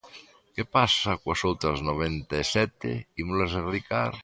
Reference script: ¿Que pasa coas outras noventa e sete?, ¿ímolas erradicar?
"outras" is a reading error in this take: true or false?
false